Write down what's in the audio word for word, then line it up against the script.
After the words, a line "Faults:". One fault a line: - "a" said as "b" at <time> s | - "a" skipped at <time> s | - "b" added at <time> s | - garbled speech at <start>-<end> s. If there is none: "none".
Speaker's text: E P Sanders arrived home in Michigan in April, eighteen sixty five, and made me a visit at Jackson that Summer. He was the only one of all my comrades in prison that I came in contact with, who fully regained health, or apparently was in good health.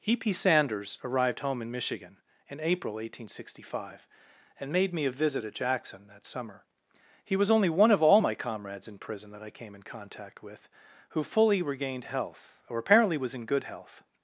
E P Sanders arrived home in Michigan in April, eighteen sixty five, and made me a visit at Jackson that Summer. He was only one of all my comrades in prison that I came in contact with, who fully regained health, or apparently was in good health.
Faults:
- "the" skipped at 7.5 s